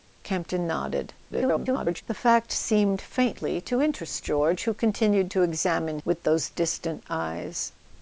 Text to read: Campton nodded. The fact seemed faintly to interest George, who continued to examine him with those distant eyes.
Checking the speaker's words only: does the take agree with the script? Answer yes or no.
no